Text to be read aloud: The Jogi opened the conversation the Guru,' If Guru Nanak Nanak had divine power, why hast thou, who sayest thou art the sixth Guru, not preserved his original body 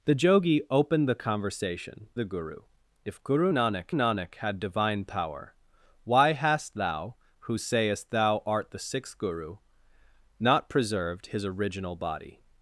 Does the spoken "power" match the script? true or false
true